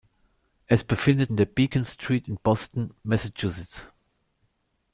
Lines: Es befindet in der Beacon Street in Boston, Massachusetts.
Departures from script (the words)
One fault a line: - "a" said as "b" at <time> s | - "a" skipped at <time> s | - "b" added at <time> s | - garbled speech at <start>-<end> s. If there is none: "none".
none